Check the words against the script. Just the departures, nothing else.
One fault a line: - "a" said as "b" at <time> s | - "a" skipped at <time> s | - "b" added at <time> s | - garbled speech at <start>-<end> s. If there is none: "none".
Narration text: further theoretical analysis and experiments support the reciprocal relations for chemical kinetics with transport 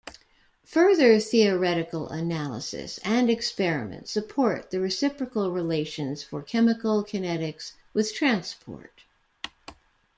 none